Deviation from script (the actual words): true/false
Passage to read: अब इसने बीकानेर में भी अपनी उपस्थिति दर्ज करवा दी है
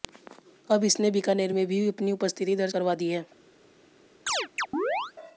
false